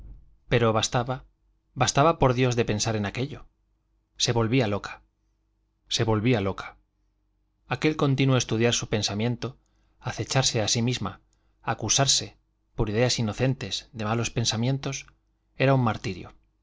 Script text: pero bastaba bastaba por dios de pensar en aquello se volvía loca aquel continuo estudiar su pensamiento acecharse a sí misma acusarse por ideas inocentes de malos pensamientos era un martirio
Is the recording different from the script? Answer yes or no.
yes